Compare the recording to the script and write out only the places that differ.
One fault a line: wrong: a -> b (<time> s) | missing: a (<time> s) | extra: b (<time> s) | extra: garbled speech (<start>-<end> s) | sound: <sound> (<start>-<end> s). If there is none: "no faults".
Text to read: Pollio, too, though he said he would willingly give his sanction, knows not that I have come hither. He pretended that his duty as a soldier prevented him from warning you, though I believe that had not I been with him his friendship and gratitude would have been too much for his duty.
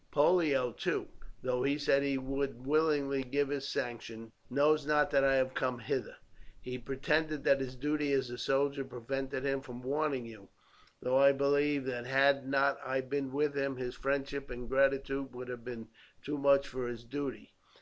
no faults